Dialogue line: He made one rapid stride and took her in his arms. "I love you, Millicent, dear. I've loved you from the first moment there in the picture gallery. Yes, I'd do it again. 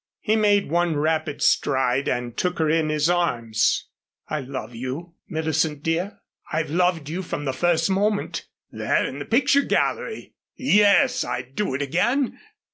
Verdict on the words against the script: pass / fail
pass